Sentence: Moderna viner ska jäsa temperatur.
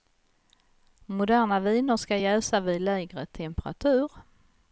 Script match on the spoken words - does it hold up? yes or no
no